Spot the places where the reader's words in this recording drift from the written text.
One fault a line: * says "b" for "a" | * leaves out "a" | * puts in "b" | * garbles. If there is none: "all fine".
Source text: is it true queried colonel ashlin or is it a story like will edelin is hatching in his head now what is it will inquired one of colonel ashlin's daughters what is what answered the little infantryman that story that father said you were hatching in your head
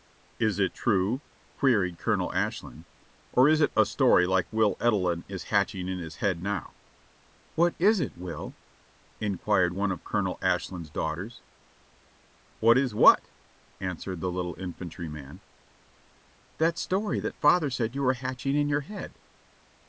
all fine